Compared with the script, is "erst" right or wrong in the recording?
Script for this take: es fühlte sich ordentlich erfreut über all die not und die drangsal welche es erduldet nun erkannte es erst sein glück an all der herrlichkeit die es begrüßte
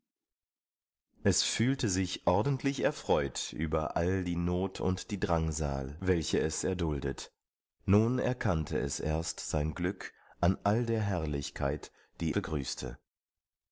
right